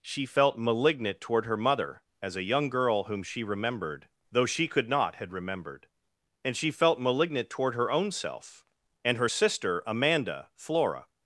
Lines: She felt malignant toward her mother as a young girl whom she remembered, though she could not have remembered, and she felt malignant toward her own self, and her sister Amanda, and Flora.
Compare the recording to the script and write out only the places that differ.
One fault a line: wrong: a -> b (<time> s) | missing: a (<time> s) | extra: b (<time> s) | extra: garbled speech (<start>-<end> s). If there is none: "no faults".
wrong: have -> had (5.2 s)
missing: and (10.5 s)